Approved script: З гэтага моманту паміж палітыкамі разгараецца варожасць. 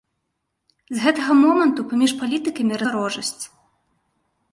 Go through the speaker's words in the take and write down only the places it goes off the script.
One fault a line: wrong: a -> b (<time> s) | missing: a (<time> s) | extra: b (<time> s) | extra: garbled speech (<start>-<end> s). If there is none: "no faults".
missing: разгараецца (2.8 s)